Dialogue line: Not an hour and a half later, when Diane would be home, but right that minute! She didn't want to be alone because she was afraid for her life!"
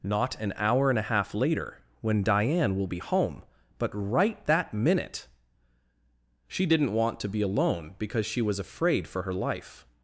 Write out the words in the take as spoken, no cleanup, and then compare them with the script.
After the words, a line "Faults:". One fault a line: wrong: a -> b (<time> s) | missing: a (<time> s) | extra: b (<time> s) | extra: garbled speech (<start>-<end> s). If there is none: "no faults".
Not an hour and a half later, when Diane will be home, but right that minute! She didn't want to be alone because she was afraid for her life!"
Faults:
wrong: would -> will (2.8 s)